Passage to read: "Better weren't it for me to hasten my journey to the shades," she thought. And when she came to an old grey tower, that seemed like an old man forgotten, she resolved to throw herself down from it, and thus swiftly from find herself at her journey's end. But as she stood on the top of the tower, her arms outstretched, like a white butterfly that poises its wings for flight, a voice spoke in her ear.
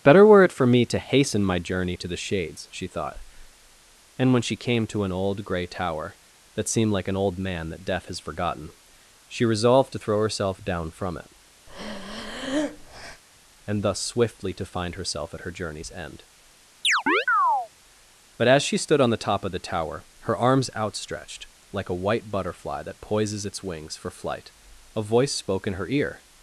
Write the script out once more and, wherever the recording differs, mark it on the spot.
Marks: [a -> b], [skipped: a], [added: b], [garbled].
"Better [weren't -> were] it for me to hasten my journey to the shades," she thought. And when she came to an old grey tower, that seemed like an old man [added: that Death has] forgotten, she resolved to throw herself down from it, and thus swiftly [from -> to] find herself at her journey's end. But as she stood on the top of the tower, her arms outstretched, like a white butterfly that poises its wings for flight, a voice spoke in her ear.